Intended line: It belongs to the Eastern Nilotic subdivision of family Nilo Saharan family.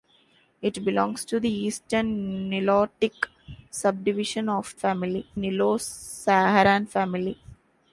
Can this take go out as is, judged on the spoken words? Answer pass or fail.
pass